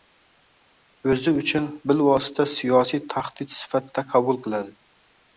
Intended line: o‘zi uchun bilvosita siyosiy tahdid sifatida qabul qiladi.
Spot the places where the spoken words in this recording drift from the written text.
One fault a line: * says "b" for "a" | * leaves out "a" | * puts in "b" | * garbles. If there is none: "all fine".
all fine